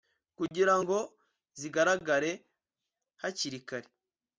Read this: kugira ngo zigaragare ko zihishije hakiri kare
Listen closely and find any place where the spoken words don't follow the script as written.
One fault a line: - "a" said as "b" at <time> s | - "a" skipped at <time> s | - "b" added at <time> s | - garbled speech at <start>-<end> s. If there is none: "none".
- "ko zihishije" skipped at 2.3 s